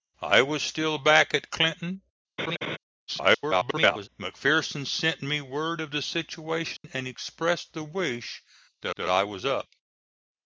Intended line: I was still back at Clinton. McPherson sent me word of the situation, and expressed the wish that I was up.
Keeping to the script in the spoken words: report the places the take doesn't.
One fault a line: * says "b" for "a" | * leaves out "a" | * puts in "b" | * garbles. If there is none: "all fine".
* garbles
* puts in "that"